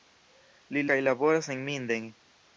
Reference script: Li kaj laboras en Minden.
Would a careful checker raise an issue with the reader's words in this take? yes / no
no